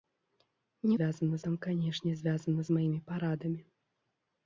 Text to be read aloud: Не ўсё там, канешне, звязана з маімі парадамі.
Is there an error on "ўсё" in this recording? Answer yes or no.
yes